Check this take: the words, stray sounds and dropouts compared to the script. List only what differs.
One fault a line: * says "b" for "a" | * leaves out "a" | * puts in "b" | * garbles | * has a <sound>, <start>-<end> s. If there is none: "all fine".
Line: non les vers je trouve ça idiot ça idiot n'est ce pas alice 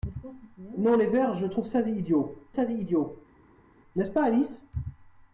all fine